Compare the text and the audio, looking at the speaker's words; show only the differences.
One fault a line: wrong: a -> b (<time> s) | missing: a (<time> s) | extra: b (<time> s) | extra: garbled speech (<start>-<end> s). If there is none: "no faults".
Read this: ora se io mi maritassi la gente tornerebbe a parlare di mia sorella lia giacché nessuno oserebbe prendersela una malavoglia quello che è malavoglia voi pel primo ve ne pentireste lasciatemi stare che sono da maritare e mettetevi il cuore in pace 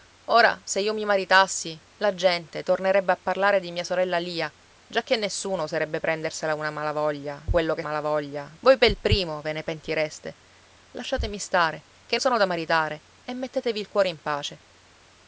no faults